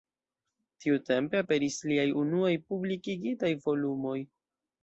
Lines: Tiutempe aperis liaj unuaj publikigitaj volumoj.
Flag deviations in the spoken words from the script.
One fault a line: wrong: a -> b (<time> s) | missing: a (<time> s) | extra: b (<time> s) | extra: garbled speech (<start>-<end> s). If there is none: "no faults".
no faults